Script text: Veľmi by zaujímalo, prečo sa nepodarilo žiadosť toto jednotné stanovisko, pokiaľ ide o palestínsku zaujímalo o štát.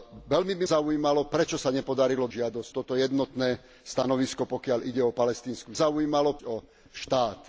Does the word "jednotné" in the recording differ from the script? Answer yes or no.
no